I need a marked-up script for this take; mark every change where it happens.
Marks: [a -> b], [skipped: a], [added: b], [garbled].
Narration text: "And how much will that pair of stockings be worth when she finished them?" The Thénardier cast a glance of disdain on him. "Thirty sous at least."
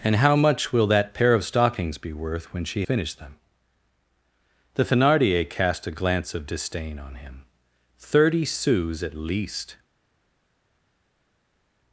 "And how much will that pair of stockings be worth when she finished them?" The Thénardier cast a glance of disdain on him. "Thirty sous at least."